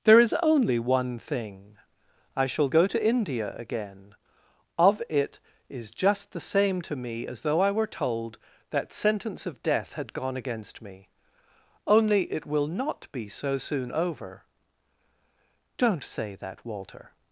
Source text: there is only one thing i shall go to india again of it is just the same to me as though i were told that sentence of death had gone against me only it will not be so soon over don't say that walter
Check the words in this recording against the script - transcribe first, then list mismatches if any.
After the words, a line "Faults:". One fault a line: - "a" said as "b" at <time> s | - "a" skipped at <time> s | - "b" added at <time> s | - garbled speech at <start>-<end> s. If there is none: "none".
there is only one thing i shall go to india again of it is just the same to me as though i were told that sentence of death had gone against me only it will not be so soon over don't say that walter
Faults:
none